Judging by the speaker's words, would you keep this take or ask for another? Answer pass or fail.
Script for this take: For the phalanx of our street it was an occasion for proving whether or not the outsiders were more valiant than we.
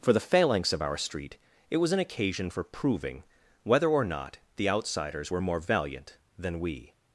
pass